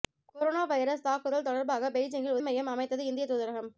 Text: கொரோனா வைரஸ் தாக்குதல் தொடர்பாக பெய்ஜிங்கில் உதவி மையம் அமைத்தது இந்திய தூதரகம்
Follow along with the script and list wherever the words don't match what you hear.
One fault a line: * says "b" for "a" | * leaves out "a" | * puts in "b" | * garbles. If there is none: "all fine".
* leaves out "உதவி"